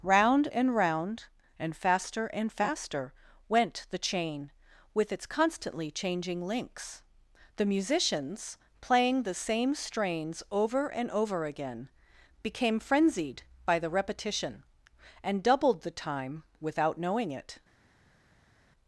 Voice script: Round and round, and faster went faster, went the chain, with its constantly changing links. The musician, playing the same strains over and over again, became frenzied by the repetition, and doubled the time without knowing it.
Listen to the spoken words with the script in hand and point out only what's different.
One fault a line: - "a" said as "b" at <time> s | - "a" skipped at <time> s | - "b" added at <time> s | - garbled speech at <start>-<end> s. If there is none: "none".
- "went" said as "and" at 2.3 s
- "musician" said as "musicians" at 7.7 s